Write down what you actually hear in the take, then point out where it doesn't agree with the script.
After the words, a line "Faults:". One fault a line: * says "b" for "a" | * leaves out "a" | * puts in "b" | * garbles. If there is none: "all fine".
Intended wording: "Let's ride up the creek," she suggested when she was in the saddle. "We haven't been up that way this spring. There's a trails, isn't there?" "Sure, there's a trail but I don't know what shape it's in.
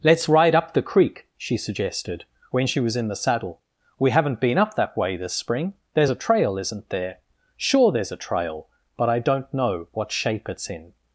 "Let's ride up the creek," she suggested when she was in the saddle. "We haven't been up that way this spring. There's a trail, isn't there?" "Sure, there's a trail but I don't know what shape it's in.
Faults:
* says "trail" for "trails"